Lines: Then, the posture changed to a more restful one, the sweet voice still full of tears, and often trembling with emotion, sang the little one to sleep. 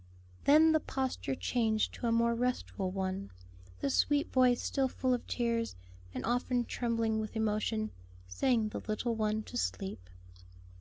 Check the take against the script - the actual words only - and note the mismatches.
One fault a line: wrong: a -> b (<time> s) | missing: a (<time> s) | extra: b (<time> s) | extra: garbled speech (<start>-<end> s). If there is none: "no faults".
no faults